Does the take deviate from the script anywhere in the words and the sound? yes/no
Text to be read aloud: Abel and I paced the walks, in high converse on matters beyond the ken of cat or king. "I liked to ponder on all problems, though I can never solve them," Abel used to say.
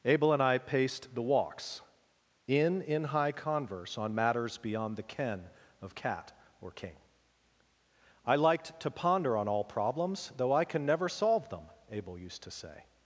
yes